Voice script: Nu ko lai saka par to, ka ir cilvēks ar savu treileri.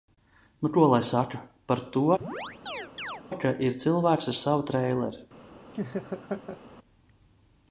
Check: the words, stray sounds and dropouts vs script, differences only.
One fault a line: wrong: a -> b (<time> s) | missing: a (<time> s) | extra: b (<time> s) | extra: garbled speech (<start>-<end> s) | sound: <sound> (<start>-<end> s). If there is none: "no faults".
sound: chirp (2.2-3.2 s)
sound: laugh (5.7-6.6 s)